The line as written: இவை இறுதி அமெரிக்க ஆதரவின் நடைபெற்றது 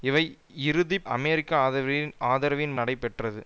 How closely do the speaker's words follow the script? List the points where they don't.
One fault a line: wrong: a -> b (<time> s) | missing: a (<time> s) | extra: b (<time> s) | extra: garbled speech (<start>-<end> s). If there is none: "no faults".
no faults